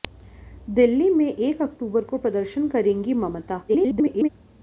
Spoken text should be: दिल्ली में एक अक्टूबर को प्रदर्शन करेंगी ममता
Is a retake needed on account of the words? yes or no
yes